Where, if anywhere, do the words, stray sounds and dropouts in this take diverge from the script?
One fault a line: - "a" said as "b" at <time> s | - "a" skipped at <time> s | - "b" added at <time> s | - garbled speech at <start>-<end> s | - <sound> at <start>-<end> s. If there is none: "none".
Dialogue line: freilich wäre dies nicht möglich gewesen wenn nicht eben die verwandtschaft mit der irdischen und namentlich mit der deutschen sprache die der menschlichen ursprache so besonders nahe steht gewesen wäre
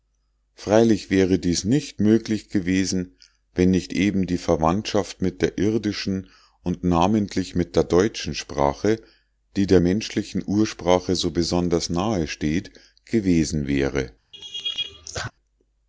- laugh at 14.3-15.3 s